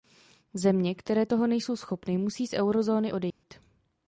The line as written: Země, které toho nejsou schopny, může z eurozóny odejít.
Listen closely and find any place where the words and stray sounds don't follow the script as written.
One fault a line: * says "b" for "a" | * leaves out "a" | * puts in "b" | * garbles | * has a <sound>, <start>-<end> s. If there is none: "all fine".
* says "musí" for "může"
* has a dropout, 3.3-3.4 s